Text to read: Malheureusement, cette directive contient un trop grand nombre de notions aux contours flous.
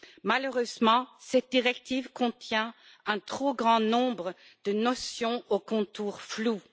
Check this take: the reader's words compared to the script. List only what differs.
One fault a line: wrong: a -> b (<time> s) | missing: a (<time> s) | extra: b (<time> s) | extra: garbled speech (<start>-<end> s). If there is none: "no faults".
no faults